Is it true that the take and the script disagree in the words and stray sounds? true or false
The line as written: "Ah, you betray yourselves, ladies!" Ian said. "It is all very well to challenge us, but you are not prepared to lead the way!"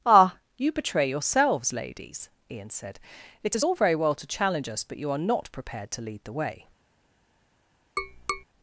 true